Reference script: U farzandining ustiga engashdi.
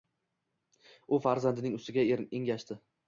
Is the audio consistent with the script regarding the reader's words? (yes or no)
yes